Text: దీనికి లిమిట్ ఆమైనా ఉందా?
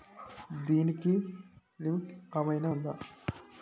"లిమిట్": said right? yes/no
yes